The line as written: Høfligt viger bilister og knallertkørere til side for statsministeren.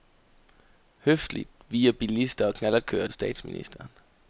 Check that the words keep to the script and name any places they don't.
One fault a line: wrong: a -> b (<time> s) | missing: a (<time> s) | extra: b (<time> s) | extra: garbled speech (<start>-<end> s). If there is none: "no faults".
missing: til side for (3.1 s)